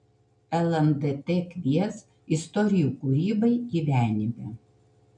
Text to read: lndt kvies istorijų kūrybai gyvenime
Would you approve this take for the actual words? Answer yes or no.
yes